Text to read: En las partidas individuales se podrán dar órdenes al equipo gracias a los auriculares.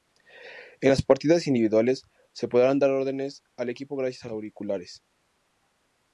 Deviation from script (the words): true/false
true